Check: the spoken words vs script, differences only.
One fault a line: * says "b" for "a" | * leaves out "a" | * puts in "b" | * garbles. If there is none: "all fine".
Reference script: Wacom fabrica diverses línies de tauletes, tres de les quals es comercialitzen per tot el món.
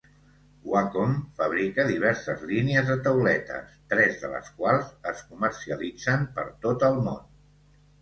all fine